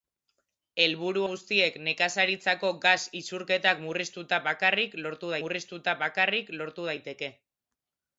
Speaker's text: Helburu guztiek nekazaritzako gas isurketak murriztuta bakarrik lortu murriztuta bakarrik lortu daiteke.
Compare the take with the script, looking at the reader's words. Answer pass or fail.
pass